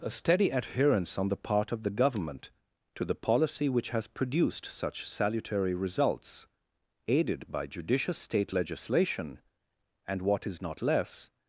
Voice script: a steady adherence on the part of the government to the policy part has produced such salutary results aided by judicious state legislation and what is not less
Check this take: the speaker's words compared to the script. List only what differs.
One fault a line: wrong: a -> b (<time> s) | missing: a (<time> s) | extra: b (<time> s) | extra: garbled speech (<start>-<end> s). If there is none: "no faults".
wrong: part -> which (3.7 s)